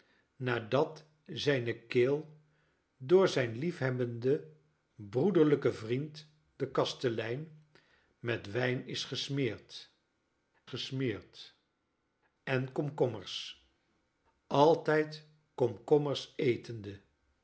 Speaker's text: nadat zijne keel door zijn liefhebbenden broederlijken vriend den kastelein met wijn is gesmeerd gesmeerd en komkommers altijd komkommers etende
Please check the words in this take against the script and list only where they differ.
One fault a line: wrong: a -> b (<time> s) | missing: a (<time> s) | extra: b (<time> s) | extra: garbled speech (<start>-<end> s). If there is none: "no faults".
no faults